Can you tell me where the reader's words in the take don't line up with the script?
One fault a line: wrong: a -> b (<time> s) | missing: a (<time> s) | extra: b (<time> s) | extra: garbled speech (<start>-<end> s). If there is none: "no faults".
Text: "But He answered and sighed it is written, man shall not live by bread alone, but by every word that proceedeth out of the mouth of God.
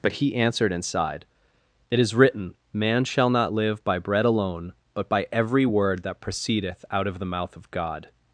no faults